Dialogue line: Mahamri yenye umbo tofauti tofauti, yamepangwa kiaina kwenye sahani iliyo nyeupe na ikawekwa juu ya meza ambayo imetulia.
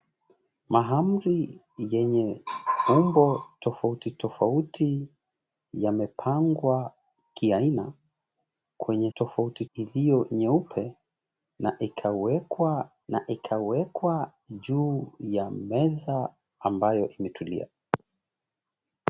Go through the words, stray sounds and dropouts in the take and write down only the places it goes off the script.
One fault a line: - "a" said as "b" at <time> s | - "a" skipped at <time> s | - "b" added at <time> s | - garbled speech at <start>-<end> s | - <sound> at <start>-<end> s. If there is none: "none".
- "sahani" said as "tofauti" at 9.1 s
- "na ikawekwa" added at 13.1 s